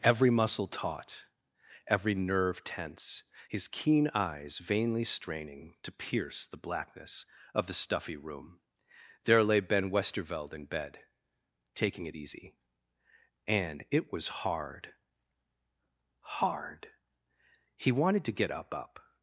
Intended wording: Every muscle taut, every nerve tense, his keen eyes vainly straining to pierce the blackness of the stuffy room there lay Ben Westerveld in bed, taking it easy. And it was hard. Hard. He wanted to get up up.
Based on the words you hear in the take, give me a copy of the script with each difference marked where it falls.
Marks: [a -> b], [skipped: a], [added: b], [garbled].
Every muscle taut, every nerve tense, his keen eyes vainly straining to pierce the blackness of the stuffy room there lay Ben Westerveld in bed, taking it easy. And it was hard. Hard. He wanted to get up up.